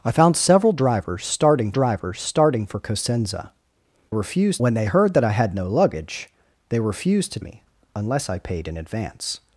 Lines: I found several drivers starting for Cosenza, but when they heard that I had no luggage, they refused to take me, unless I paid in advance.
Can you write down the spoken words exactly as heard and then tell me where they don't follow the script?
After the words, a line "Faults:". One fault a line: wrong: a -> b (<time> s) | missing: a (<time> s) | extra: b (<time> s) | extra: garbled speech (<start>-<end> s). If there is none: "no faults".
I found several drivers starting drivers starting for Cosenza, refused when they heard that I had no luggage, they refused to me, unless I paid in advance.
Faults:
extra: drivers starting (1.7 s)
wrong: but -> refused (4.1 s)
missing: take (7.4 s)